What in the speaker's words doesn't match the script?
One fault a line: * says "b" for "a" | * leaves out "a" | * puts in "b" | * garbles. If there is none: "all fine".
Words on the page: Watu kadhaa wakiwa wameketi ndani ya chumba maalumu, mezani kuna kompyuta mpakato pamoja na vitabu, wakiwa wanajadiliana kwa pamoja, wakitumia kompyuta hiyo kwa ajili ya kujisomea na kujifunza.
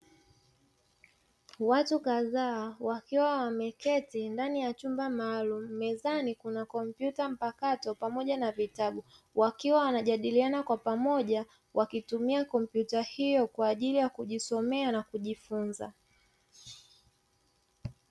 all fine